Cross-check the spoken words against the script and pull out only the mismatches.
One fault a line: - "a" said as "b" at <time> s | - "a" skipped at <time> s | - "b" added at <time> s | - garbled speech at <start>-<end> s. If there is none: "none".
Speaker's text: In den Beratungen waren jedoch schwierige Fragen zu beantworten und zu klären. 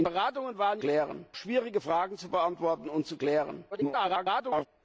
- "den" skipped at 0.1 s
- "jedoch" said as "klären" at 0.8 s
- garbled speech at 3.7-4.7 s